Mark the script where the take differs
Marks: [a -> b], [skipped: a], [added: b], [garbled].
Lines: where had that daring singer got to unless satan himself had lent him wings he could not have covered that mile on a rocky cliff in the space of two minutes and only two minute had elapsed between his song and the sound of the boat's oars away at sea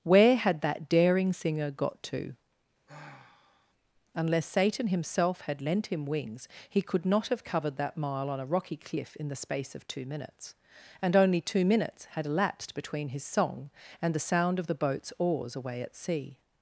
where had that daring singer got to unless satan himself had lent him wings he could not have covered that mile on a rocky cliff in the space of two minutes and only two [minute -> minutes] had elapsed between his song and the sound of the boat's oars away at sea